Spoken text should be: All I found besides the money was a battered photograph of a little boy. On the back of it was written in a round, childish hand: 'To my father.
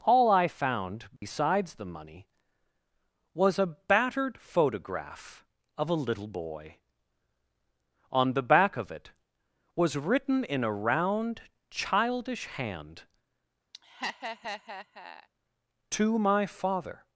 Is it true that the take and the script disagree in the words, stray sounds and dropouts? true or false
true